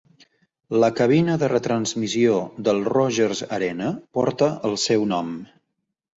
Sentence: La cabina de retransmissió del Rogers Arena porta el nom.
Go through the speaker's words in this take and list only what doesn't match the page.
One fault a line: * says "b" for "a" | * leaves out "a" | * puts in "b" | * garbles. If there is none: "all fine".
* puts in "seu"